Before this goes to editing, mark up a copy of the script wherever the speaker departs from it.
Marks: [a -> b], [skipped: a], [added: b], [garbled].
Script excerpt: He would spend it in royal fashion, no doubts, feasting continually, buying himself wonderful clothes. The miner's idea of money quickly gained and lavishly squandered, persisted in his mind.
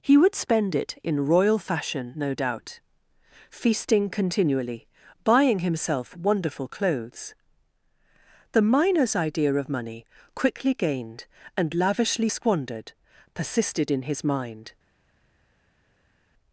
He would spend it in royal fashion, no [doubts, -> doubt] feasting continually, buying himself wonderful clothes. The miner's idea of money quickly gained and lavishly squandered, persisted in his mind.